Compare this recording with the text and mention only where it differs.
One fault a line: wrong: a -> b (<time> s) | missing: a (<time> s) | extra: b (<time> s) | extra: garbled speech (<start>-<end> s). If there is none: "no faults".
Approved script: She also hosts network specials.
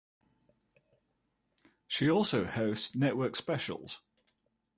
no faults